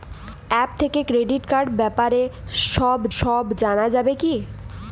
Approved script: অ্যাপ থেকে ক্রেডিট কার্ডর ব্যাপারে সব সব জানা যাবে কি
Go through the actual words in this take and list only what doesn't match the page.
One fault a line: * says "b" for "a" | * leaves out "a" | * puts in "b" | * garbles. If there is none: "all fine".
all fine